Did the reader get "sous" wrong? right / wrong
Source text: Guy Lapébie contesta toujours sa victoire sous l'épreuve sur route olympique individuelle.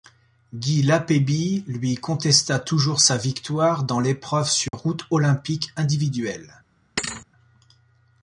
wrong